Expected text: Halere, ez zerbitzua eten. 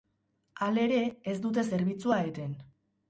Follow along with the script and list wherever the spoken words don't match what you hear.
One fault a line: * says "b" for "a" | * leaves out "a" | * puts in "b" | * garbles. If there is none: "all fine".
* puts in "dute"